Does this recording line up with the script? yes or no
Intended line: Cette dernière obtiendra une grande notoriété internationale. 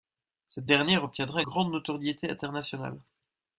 no